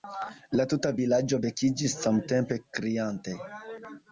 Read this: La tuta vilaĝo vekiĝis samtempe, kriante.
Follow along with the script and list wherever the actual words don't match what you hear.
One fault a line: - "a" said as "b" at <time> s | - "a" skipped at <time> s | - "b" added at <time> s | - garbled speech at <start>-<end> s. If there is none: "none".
none